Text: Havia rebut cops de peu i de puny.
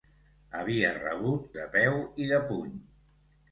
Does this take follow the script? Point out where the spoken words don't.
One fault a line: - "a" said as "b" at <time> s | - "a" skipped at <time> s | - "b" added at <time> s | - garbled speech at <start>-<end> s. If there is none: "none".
- "cops" skipped at 1.4 s